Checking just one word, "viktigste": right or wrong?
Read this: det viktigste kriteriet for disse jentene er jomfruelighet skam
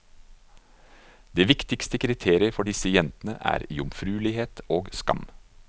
right